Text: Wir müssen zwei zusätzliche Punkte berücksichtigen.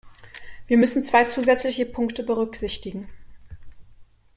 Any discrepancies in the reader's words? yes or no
no